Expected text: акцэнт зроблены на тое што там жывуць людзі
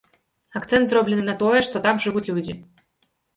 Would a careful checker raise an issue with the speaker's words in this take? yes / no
no